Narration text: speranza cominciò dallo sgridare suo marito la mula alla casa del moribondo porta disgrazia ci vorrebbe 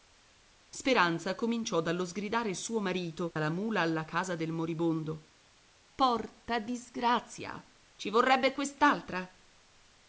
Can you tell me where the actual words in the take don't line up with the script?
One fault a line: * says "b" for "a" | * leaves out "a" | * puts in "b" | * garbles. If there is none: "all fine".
all fine